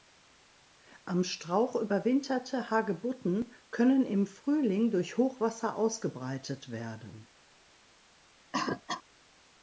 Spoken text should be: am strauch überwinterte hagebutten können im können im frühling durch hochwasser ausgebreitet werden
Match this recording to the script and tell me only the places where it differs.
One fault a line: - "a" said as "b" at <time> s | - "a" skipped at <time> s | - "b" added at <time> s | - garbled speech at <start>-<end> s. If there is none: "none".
- "können im" skipped at 4.2 s